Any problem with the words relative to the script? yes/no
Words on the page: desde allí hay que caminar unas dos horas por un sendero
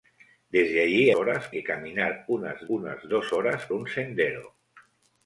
yes